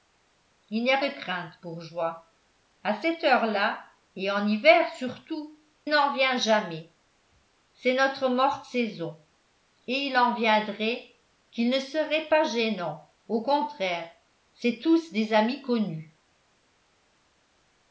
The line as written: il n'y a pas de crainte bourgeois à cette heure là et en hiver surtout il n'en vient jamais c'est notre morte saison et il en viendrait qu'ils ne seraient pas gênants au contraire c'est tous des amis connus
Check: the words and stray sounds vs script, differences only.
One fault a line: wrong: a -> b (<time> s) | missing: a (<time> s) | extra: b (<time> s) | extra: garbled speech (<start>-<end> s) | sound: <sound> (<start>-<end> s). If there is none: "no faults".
missing: pas (1.0 s)
missing: il (5.6 s)